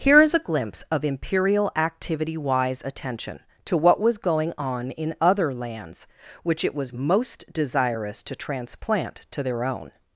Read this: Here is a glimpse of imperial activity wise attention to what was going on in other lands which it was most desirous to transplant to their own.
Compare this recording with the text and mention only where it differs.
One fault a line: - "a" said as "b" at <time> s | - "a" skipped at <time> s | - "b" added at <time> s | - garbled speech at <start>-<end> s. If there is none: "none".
none